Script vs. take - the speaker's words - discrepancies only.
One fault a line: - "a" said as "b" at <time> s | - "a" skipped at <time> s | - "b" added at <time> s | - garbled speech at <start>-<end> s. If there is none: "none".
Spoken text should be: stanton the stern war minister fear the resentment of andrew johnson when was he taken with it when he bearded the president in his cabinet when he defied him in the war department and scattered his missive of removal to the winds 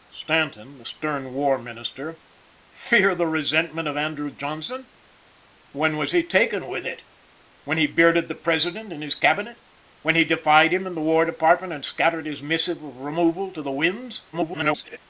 - garbled speech at 14.3-15.0 s